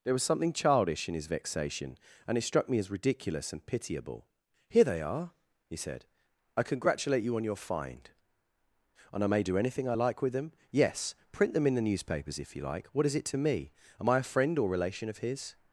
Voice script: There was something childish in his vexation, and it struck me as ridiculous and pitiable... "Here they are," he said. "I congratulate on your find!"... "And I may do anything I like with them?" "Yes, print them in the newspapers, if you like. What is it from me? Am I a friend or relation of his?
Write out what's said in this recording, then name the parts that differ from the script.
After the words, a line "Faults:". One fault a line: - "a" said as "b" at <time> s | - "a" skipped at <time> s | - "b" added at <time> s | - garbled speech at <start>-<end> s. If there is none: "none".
There was something childish in his vexation, and it struck me as ridiculous and pitiable... "Here they are," he said. "I congratulate you on your find!"... "And I may do anything I like with them?" "Yes, print them in the newspapers, if you like. What is it to me? Am I a friend or relation of his?
Faults:
- "you" added at 7.2 s
- "from" said as "to" at 13.2 s